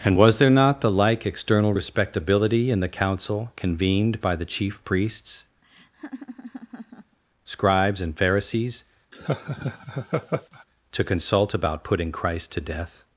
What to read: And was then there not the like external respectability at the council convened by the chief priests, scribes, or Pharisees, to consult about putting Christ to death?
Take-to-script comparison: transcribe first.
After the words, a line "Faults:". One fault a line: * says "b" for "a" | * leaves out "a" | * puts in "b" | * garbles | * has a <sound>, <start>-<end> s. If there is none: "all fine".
And was there not the like external respectability in the council convened by the chief priests, scribes, and Pharisees, to consult about putting Christ to death?
Faults:
* leaves out "then"
* says "in" for "at"
* has a laugh, 5.6-7.2 s
* says "and" for "or"
* has a laugh, 9.1-10.6 s